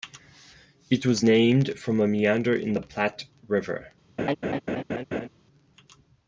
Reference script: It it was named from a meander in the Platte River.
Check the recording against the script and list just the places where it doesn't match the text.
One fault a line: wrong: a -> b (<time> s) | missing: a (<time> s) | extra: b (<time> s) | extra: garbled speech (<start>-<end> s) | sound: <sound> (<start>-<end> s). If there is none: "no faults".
missing: it (1.1 s)
sound: laugh (4.2-5.3 s)